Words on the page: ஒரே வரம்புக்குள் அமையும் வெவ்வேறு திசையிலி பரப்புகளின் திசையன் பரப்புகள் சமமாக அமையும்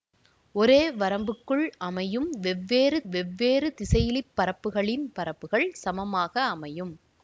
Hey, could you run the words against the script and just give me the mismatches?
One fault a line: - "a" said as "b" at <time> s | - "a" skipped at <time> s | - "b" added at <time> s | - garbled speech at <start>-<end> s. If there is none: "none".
- "வெவ்வேறு" added at 3.1 s
- "திசையன்" skipped at 5.0 s